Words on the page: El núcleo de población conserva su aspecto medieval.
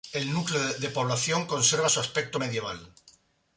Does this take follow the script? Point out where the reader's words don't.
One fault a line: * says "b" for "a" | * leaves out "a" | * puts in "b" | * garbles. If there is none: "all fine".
all fine